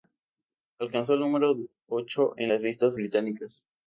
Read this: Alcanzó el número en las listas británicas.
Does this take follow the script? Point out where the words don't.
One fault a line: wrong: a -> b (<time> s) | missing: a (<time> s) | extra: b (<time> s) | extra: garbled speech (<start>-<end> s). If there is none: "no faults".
extra: ocho (1.9 s)